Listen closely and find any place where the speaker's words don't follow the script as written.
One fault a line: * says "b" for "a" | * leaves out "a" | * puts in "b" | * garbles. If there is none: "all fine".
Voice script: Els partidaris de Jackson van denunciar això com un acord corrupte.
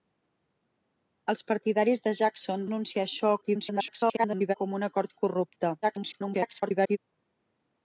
* leaves out "van"
* garbles
* garbles